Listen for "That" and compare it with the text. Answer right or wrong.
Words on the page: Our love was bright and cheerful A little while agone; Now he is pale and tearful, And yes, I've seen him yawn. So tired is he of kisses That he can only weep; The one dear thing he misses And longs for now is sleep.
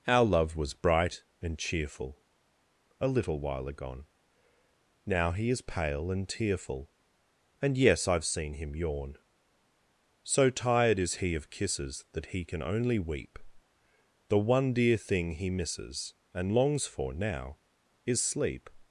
right